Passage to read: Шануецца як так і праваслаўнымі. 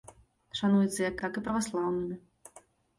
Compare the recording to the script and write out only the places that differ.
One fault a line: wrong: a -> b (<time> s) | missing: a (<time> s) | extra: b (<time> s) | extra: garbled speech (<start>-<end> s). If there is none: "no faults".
no faults